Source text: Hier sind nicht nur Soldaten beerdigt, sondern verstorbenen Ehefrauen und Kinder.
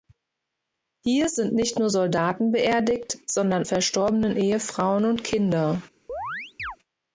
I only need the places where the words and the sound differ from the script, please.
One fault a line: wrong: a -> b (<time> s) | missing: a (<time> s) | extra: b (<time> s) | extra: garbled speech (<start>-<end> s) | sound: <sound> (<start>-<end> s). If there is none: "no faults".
sound: chirp (6.1-6.8 s)